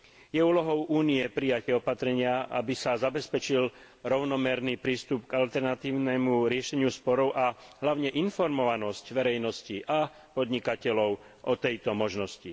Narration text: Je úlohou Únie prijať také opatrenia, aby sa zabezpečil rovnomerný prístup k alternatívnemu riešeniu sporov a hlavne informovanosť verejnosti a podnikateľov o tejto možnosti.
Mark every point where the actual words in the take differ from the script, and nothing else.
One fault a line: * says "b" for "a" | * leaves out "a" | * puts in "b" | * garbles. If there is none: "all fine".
* leaves out "také"